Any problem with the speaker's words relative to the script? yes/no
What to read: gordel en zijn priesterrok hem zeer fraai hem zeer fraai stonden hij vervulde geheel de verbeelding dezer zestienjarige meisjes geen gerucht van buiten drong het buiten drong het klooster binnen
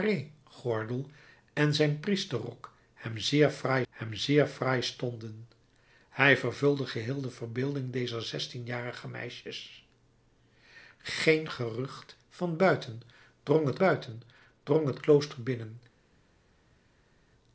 no